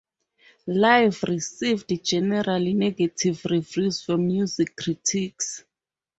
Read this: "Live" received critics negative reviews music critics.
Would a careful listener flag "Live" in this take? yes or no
no